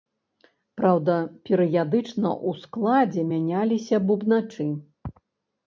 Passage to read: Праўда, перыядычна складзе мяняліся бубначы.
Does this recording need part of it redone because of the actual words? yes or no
yes